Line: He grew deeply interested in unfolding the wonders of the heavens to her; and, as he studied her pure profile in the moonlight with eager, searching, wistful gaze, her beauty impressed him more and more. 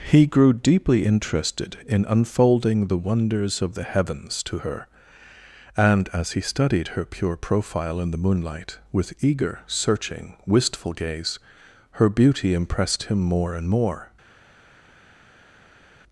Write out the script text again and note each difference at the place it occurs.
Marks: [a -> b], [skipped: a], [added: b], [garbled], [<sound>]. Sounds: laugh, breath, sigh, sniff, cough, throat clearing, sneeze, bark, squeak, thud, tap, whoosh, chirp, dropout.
He grew deeply interested in unfolding the wonders of the heavens to her; and, as he studied her pure profile in the moonlight with eager, searching, wistful gaze, her beauty impressed him more and more.